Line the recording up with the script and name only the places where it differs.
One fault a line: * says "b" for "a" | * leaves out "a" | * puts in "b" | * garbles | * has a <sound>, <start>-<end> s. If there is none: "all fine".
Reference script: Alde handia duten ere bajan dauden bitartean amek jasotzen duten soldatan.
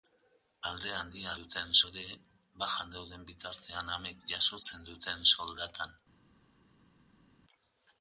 all fine